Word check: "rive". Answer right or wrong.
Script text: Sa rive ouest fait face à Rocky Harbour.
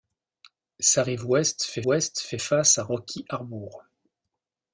right